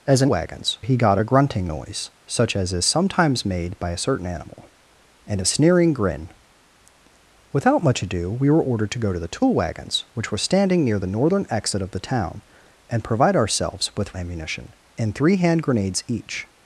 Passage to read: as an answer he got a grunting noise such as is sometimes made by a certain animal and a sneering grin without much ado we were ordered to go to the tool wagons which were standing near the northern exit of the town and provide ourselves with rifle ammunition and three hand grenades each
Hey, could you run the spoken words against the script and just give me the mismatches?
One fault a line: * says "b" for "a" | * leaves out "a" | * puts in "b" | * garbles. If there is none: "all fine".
* says "wagons" for "answer"
* leaves out "rifle"